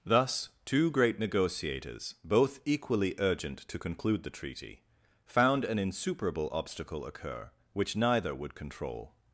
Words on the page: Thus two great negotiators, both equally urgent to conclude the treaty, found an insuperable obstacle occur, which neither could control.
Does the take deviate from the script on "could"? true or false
true